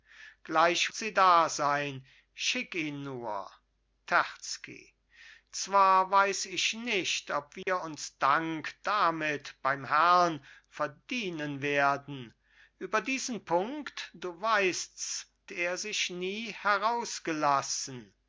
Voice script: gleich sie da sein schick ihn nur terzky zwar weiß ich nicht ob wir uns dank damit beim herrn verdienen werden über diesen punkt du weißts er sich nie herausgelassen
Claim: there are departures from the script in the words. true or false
false